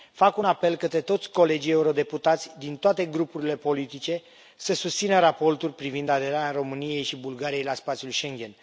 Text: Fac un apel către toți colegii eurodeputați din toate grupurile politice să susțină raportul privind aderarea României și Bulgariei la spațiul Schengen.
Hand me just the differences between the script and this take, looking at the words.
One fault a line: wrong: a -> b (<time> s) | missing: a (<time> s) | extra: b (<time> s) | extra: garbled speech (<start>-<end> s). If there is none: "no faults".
no faults